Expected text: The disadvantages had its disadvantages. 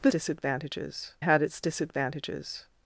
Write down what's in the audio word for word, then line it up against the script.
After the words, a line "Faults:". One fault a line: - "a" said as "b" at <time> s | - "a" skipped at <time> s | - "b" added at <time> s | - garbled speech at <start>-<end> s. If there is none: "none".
The disadvantages had its disadvantages.
Faults:
none